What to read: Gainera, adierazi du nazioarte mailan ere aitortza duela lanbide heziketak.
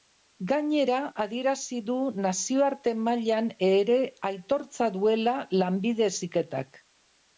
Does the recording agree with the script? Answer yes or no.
yes